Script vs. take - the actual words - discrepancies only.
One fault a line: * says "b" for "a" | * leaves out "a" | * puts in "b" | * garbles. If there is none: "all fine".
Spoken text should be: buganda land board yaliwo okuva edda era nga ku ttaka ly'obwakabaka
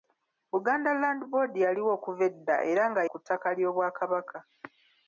all fine